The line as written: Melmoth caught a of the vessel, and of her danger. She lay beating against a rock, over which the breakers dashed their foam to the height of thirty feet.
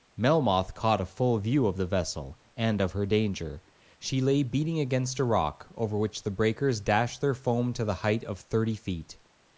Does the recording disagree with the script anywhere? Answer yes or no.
yes